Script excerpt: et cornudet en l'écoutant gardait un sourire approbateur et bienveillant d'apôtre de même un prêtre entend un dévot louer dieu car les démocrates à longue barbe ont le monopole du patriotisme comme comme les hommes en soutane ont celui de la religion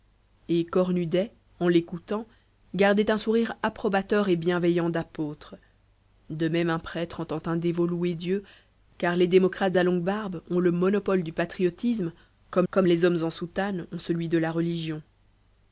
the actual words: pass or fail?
pass